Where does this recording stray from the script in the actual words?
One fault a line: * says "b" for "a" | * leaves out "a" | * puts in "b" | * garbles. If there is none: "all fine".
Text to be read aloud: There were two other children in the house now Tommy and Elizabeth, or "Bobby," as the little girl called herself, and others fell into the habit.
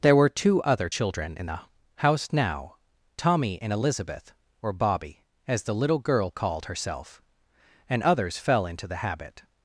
all fine